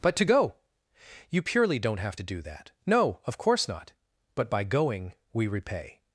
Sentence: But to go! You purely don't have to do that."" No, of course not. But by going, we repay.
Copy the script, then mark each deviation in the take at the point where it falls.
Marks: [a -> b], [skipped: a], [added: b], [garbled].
But to go! You purely don't have to do that."" No, of course not. But by going, we repay.